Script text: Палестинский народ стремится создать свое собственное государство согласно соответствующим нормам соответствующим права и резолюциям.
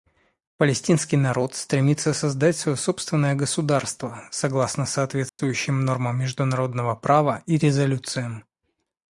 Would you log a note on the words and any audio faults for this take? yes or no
yes